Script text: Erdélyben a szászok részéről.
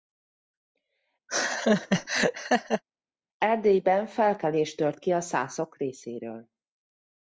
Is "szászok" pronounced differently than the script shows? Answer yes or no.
no